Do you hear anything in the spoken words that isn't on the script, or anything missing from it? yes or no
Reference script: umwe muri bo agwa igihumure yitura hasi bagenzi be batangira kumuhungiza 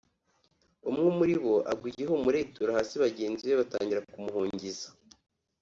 no